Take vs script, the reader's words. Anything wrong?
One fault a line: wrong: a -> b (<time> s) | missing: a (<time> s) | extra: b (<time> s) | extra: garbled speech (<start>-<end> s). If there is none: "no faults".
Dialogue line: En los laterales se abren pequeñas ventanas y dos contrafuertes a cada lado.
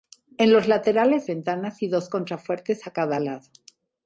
missing: se abren pequeñas (1.3 s)